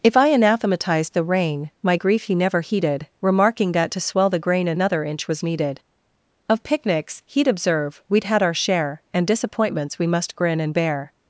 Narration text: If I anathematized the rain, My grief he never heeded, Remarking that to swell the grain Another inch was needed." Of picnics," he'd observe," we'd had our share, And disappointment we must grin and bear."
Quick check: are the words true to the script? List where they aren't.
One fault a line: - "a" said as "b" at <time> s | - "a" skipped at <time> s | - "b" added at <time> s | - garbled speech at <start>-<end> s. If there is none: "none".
- "disappointment" said as "disappointments" at 9.3 s